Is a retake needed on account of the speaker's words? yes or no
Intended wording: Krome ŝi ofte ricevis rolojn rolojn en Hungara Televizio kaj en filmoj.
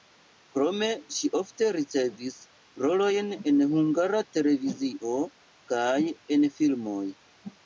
yes